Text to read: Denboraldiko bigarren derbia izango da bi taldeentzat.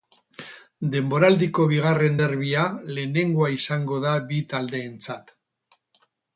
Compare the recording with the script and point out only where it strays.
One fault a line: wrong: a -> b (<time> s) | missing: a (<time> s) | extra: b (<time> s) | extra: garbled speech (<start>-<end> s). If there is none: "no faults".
extra: lehenengoa (3.0 s)